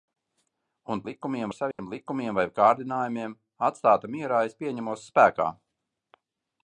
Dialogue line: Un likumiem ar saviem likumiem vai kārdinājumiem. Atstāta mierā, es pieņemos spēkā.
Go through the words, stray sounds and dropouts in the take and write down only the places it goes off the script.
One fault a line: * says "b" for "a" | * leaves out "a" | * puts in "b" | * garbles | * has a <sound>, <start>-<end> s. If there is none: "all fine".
* has a dropout, 1.7-1.8 s